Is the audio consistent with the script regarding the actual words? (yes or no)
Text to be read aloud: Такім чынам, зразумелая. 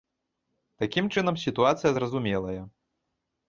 no